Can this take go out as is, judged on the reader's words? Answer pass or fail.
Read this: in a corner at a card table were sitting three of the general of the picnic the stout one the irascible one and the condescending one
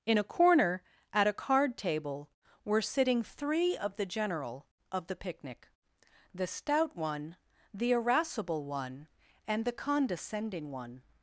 pass